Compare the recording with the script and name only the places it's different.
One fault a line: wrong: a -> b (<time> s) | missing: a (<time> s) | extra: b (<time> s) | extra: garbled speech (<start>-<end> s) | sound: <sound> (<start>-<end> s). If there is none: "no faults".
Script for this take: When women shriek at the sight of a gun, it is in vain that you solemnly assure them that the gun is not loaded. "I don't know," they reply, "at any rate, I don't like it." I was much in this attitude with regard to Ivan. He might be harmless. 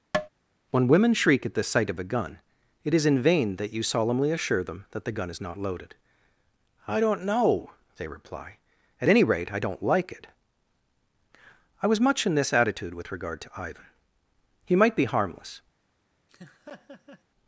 sound: tap (0.1-0.3 s)
sound: laugh (16.3-17.2 s)